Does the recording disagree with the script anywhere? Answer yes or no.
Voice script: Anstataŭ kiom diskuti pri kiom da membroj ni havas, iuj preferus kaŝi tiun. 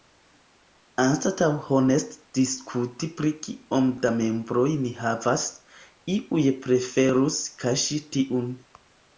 yes